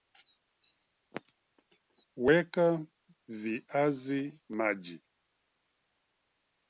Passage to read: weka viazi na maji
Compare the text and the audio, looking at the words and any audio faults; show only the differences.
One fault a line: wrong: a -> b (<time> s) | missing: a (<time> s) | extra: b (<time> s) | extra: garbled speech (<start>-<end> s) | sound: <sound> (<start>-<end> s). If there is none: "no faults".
missing: na (4.4 s)